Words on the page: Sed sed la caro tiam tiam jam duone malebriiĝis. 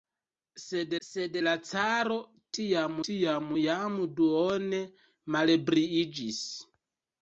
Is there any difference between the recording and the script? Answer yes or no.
no